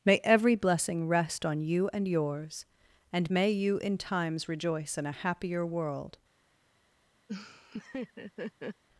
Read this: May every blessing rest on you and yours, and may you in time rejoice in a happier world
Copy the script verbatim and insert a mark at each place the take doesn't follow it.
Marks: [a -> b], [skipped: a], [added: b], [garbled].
May every blessing rest on you and yours, and may you in [time -> times] rejoice in a happier world